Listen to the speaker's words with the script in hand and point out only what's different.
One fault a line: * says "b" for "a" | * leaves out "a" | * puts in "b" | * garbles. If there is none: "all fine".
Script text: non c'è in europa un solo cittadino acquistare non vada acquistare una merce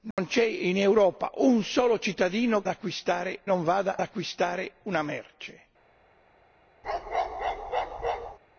all fine